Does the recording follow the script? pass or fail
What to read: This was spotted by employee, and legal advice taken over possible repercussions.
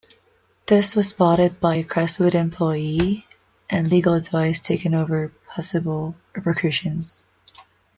fail